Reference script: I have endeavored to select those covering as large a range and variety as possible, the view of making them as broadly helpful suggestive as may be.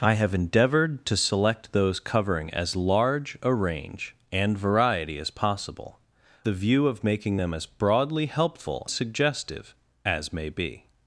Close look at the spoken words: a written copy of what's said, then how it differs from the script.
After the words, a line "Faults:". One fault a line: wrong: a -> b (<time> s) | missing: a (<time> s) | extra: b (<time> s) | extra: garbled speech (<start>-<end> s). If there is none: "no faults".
I have endeavored to select those covering as large a range and variety as possible, the view of making them as broadly helpful suggestive as may be.
Faults:
no faults